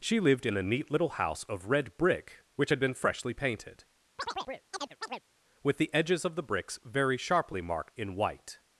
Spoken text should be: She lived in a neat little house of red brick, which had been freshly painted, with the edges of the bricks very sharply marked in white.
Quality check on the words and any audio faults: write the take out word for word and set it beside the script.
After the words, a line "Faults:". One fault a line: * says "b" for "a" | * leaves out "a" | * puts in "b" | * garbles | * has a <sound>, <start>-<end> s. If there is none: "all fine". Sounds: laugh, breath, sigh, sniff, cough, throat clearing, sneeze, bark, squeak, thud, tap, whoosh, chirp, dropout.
She lived in a neat little house of red brick, which had been freshly painted, with the edges of the bricks very sharply marked in white.
Faults:
* has a chirp, 4.2-5.2 s